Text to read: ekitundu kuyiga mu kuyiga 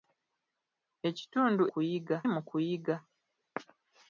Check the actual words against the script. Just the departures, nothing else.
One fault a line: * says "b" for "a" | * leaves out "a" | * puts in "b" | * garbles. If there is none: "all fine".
all fine